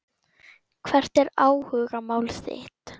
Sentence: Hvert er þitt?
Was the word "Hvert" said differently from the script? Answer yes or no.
no